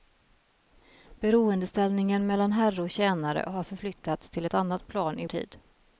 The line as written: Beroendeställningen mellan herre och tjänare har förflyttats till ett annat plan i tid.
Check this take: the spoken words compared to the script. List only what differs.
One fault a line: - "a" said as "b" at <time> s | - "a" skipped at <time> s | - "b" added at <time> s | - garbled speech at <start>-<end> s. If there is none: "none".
none